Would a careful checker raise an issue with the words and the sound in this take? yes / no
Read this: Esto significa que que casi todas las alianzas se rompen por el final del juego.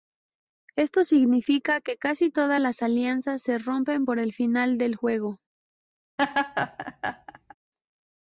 yes